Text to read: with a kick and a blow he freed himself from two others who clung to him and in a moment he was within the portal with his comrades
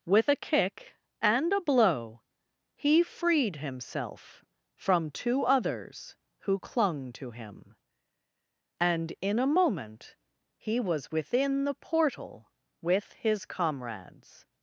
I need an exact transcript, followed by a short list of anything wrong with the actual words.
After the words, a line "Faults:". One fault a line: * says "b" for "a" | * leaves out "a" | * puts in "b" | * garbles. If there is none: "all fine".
with a kick and a blow he freed himself from two others who clung to him and in a moment he was within the portal with his comrades
Faults:
all fine